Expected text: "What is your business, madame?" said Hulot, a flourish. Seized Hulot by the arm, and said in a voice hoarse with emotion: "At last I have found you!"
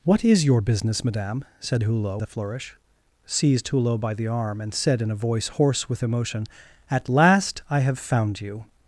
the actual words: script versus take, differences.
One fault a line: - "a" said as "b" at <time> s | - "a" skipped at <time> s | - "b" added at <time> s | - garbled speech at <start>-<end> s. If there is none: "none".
none